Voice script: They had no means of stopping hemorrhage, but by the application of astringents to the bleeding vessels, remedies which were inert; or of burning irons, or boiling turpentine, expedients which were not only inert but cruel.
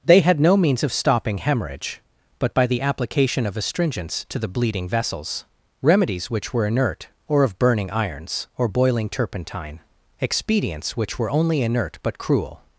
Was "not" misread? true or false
true